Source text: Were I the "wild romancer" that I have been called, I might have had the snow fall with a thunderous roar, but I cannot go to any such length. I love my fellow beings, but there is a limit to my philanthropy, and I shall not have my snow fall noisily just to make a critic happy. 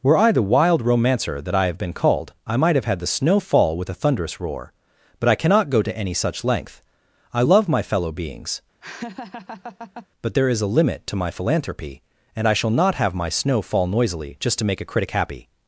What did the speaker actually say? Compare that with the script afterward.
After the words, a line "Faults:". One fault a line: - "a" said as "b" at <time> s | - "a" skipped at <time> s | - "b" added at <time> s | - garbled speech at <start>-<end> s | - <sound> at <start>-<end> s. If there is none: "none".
Were I the "wild romancer" that I have been called, I might have had the snow fall with a thunderous roar, but I cannot go to any such length. I love my fellow beings, but there is a limit to my philanthropy, and I shall not have my snow fall noisily just to make a critic happy.
Faults:
- laugh at 8.8-10.1 s